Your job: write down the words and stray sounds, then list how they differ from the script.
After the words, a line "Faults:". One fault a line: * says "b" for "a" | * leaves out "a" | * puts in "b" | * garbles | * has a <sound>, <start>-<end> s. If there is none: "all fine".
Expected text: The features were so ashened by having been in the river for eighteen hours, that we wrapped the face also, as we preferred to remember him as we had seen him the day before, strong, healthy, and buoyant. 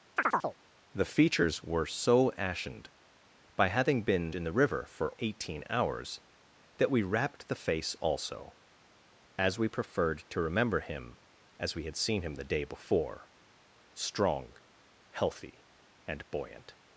The features were so ashened by having been in the river for eighteen hours, that we wrapped the face also, as we preferred to remember him as we had seen him the day before, strong, healthy, and buoyant.
Faults:
* has a chirp, 0.2-0.6 s